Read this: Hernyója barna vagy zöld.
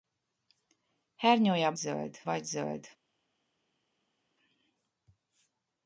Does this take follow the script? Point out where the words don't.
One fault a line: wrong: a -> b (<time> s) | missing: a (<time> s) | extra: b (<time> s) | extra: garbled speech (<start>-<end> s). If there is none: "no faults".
wrong: barna -> zöld (1.7 s)